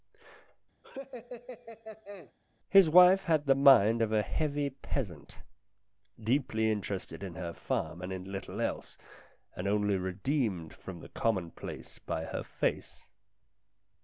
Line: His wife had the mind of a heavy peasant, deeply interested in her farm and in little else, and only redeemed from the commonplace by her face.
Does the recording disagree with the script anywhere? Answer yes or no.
no